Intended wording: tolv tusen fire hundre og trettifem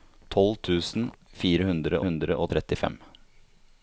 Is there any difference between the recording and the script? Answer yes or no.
yes